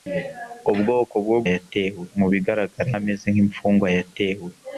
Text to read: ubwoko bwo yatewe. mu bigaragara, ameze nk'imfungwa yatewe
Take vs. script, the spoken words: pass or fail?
pass